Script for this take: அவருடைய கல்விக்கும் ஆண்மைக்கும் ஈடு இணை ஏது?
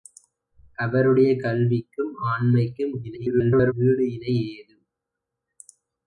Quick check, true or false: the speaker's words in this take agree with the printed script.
false